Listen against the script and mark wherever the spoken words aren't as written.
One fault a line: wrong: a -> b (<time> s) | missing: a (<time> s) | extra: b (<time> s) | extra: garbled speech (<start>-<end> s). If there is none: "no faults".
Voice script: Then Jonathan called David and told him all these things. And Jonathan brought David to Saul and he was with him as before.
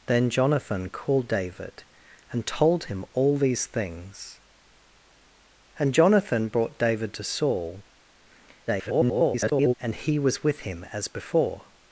extra: garbled speech (8.7-9.7 s)